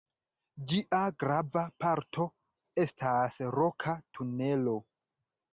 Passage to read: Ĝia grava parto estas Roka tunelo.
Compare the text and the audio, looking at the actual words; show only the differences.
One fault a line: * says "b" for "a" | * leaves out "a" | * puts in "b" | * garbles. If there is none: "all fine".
all fine